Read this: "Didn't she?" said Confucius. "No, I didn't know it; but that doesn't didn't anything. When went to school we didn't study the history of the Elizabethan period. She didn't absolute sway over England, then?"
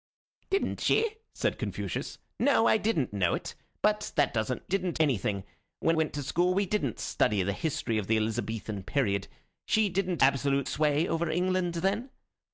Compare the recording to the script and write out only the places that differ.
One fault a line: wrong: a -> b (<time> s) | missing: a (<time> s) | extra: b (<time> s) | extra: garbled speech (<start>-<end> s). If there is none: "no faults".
no faults